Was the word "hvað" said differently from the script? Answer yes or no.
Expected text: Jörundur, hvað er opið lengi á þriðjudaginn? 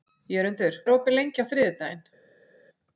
yes